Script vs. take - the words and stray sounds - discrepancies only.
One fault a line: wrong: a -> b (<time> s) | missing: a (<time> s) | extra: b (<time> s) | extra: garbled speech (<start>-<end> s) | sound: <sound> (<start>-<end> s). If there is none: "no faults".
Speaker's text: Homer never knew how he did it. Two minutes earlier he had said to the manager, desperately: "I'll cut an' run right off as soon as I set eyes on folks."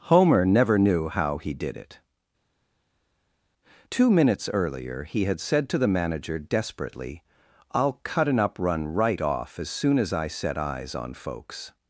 extra: up (8.4 s)